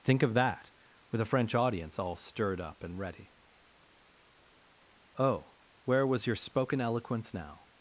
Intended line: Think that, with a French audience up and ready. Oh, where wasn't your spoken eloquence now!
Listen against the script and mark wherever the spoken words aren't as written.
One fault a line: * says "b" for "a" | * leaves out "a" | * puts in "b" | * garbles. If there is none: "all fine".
* puts in "of"
* puts in "all stirred"
* says "was" for "wasn't"